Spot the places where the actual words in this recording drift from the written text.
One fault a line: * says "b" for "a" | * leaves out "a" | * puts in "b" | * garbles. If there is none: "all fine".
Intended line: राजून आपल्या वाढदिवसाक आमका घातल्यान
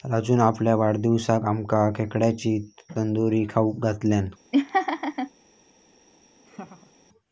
* puts in "खेकड्यांची तंदूरी खाऊक"